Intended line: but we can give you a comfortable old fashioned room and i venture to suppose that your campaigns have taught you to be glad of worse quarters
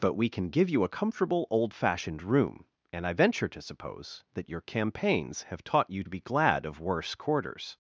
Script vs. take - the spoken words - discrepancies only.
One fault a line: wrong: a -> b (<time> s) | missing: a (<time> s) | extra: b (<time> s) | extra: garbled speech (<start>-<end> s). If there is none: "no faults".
missing: to (6.0 s)